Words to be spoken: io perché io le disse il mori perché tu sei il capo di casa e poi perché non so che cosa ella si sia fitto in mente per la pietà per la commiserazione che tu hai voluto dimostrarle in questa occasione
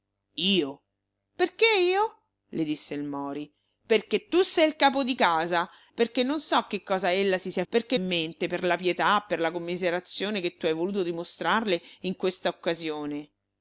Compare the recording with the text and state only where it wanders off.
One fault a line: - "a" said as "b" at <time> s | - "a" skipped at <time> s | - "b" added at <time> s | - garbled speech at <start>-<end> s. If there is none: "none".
- "e poi" skipped at 5.7 s
- "fitto" said as "perché" at 7.7 s